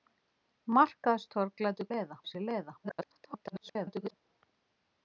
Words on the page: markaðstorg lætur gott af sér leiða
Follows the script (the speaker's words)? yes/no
no